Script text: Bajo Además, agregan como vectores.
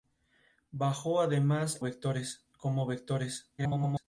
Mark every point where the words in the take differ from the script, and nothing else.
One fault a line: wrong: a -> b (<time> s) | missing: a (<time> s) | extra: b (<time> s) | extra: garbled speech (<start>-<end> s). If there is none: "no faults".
wrong: agregan -> vectores (1.8 s)
extra: garbled speech (3.6-4.0 s)